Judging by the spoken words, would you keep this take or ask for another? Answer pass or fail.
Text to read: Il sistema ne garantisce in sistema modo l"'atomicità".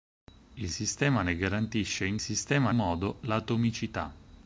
pass